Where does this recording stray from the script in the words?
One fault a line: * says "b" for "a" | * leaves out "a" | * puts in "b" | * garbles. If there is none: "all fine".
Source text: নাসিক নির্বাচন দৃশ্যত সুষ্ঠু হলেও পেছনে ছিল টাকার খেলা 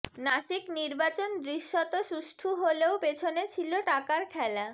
all fine